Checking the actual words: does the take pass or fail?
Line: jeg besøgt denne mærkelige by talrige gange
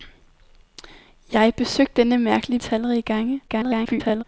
fail